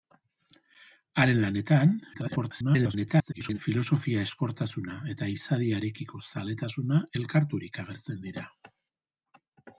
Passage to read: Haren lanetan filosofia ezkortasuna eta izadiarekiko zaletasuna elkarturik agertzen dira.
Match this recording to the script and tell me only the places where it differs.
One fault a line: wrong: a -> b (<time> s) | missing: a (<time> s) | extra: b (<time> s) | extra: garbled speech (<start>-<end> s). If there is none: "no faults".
extra: garbled speech (2.1-3.6 s)